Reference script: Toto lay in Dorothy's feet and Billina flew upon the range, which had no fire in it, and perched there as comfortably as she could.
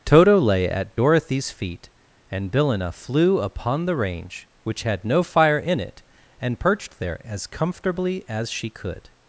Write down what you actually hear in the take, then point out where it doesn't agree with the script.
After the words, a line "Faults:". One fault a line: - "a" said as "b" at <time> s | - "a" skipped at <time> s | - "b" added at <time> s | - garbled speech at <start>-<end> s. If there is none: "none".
Toto lay at Dorothy's feet and Billina flew upon the range, which had no fire in it, and perched there as comfortably as she could.
Faults:
- "in" said as "at" at 0.7 s